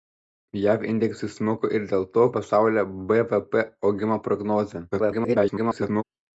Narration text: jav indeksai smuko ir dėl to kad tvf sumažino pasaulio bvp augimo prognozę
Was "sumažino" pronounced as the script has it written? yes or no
no